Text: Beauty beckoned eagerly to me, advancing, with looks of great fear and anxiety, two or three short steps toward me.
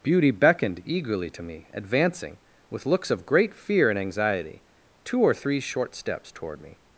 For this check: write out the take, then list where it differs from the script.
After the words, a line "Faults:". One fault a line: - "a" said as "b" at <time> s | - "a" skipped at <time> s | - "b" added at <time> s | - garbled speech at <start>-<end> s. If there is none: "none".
Beauty beckoned eagerly to me, advancing, with looks of great fear and anxiety, two or three short steps toward me.
Faults:
none